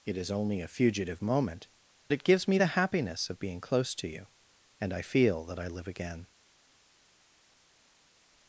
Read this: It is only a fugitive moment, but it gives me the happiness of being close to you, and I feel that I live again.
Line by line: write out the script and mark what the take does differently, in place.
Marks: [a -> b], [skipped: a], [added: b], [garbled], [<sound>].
It is only a fugitive moment, [skipped: but] it gives me the happiness of being close to you, and I feel that I live again.